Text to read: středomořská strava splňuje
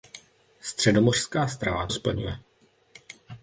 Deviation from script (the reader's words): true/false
false